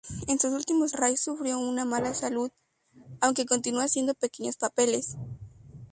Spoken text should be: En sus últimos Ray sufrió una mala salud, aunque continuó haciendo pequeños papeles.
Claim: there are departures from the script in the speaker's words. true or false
false